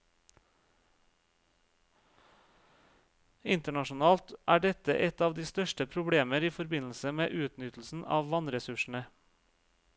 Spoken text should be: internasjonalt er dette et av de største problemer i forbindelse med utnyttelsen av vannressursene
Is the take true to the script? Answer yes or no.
yes